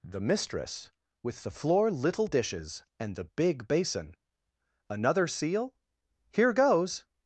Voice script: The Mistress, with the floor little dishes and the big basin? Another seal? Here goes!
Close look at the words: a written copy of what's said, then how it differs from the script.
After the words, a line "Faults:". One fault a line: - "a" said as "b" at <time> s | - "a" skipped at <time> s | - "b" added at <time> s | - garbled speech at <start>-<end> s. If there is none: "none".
The Mistress, with the floor little dishes and the big basin? Another seal? Here goes!
Faults:
none